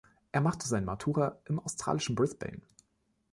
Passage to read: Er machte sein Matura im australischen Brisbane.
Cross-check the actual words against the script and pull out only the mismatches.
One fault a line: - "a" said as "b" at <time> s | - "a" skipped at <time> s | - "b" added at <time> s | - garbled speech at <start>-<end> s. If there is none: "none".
none